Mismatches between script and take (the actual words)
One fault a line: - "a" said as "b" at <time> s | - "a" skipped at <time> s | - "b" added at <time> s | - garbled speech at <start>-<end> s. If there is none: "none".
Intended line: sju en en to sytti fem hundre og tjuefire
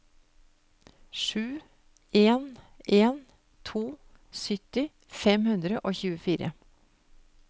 none